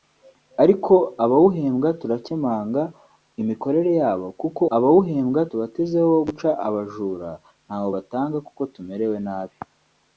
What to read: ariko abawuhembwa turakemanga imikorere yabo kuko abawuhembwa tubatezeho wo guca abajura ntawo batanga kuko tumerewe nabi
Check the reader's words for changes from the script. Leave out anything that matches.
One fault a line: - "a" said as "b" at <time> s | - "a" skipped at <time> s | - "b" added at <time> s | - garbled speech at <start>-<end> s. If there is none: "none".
none